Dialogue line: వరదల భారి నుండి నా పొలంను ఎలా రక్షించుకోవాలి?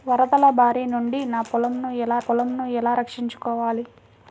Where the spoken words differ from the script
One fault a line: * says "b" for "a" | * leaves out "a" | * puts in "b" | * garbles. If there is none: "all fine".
* puts in "పొలంను ఎలా"